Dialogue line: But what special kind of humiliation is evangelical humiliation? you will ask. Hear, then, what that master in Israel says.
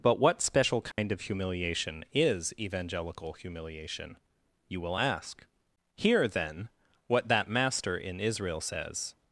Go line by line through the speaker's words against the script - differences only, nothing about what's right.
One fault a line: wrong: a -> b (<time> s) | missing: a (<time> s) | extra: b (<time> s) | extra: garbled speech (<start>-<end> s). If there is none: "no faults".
no faults